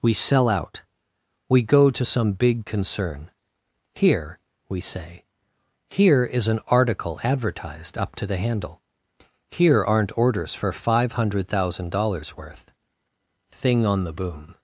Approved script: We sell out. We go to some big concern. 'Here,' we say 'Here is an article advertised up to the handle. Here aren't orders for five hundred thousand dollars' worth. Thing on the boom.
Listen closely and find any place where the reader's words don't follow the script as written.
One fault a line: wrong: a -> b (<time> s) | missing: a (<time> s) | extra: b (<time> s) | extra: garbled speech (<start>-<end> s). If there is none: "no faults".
no faults